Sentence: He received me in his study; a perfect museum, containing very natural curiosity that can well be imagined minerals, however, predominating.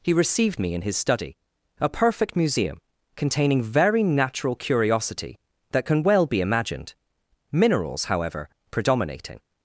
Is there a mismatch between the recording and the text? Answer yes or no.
no